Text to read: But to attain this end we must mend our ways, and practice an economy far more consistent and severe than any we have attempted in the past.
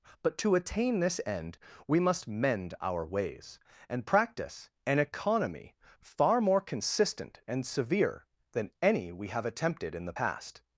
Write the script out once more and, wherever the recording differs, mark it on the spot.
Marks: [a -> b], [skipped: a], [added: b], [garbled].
But to attain this end we must mend our ways, and practice an economy far more consistent and severe than any we have attempted in the past.